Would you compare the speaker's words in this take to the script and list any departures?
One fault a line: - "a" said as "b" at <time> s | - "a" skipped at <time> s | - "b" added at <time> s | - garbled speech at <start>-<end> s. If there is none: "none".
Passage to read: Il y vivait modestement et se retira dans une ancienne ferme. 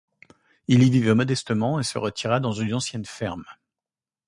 none